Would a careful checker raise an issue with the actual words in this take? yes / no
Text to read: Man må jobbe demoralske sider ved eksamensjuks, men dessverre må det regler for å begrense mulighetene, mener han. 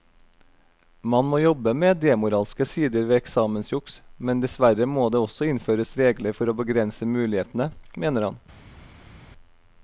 yes